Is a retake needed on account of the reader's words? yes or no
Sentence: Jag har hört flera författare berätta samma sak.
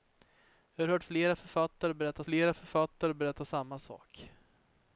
yes